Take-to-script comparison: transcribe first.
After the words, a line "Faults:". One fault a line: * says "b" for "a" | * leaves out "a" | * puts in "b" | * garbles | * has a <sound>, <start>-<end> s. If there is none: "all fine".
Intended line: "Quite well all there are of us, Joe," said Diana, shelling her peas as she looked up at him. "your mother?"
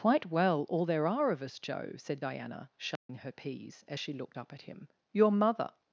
"Quite well all there are of us, Joe," said Diana, shelling her peas as she looked up at him. "your mother?"
Faults:
* has a dropout, 3.0-3.1 s